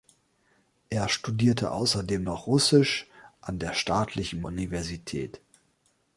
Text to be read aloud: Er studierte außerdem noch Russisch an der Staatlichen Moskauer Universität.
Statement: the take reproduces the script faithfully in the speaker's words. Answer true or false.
false